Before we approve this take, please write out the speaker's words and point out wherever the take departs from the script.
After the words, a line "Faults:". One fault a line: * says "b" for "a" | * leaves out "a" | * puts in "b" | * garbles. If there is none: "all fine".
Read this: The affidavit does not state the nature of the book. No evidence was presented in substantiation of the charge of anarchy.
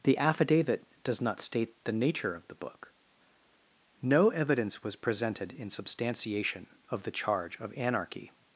The affidavit does not state the nature of the book. No evidence was presented in substantiation of the charge of anarchy.
Faults:
all fine